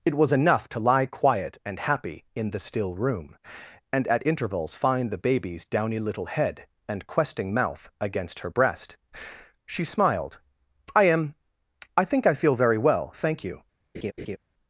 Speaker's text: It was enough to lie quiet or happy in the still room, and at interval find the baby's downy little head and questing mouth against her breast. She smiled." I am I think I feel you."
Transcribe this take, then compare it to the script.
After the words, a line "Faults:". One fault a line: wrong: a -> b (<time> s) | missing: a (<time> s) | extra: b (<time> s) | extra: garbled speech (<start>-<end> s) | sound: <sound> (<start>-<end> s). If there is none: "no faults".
It was enough to lie quiet and happy in the still room, and at intervals find the baby's downy little head and questing mouth against her breast. She smiled." I am I think I feel very well thank you."
Faults:
wrong: or -> and (1.6 s)
wrong: interval -> intervals (4.2 s)
extra: very well thank (12.6 s)
sound: laugh (13.9-14.4 s)